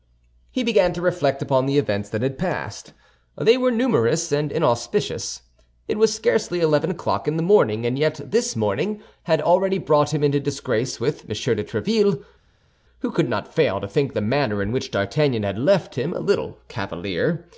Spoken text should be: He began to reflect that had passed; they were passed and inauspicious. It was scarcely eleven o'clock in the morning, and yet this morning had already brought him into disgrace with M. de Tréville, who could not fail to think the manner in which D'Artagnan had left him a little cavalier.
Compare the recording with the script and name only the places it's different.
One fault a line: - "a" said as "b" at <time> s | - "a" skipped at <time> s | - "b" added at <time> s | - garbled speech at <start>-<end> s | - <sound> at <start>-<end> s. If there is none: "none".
- "upon the events" added at 1.4 s
- "passed" said as "numerous" at 3.7 s